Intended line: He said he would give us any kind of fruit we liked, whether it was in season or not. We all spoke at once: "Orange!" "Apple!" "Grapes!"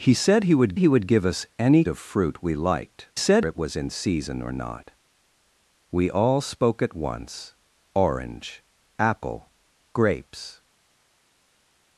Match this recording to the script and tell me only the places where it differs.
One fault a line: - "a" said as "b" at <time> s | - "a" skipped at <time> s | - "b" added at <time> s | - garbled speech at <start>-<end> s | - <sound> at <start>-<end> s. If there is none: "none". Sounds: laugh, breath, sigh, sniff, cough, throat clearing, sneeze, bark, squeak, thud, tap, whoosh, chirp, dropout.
- "he would" added at 0.8 s
- "kind" skipped at 1.8 s
- "whether" said as "said" at 3.2 s